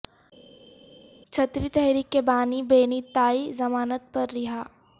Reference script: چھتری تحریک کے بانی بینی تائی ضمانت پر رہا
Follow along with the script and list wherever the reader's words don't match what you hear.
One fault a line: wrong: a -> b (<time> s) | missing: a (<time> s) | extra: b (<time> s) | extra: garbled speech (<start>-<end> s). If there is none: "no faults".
no faults